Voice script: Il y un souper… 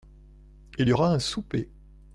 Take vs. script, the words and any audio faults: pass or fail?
fail